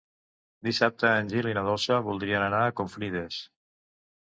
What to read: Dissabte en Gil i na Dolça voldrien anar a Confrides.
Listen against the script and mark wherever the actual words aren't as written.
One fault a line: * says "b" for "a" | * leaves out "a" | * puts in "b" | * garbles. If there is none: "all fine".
all fine